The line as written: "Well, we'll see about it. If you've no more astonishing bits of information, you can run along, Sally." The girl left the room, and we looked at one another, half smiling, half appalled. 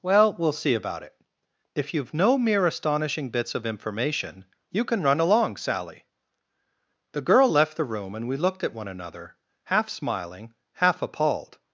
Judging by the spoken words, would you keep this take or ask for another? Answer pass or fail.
fail